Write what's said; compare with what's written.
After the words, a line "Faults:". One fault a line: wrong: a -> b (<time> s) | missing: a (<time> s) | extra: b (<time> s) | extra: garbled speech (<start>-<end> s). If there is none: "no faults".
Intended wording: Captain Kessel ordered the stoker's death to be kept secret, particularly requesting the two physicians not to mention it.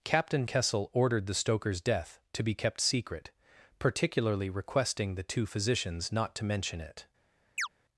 Captain Kessel ordered the stoker's death to be kept secret, particularly requesting the two physicians not to mention it.
Faults:
no faults